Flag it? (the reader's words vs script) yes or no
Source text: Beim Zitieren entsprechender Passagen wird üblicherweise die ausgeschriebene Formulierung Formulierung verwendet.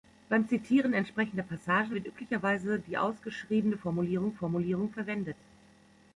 no